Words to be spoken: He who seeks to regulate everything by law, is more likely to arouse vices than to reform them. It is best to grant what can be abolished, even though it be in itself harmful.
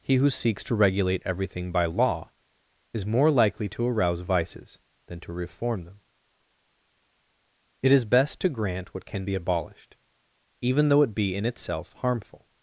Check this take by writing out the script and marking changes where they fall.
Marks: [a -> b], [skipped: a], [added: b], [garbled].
He who seeks to regulate everything by law, is more likely to arouse vices than to reform them. It is best to grant what can be abolished, even though it be in itself harmful.